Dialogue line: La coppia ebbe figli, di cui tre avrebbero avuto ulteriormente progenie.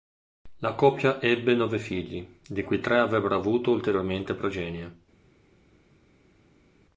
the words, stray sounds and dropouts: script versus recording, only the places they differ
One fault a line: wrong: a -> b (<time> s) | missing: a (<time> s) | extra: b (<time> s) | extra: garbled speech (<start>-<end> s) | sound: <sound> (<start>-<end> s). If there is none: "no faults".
extra: nove (1.5 s)